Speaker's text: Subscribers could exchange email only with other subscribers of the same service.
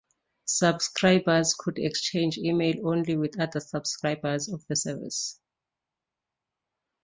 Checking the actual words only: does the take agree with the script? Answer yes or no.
no